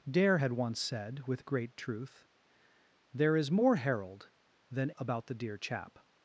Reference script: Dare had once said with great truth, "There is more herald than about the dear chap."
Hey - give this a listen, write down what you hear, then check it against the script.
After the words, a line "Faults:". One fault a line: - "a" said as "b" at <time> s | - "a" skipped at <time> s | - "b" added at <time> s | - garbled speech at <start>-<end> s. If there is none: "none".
Dare had once said with great truth, "There is more herald than about the dear chap."
Faults:
none